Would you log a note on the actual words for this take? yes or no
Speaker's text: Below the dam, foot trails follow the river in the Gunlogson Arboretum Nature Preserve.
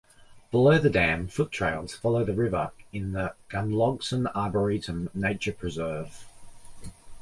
no